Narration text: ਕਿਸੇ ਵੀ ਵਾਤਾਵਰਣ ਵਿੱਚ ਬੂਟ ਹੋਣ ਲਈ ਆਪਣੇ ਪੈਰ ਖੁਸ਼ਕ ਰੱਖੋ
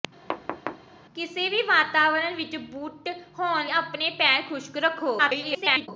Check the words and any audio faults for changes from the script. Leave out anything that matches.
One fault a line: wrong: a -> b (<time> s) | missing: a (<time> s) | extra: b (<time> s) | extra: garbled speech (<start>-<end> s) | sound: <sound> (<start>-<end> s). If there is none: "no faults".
sound: thud (0.3-0.9 s)
missing: ਲਈ (3.7 s)
extra: garbled speech (5.2-5.9 s)